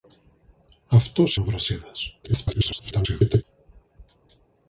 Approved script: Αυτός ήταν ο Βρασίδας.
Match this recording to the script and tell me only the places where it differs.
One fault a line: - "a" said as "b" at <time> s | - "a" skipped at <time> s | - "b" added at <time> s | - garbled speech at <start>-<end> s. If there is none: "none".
- "ήταν" skipped at 1.4 s
- garbled speech at 2.2-3.4 s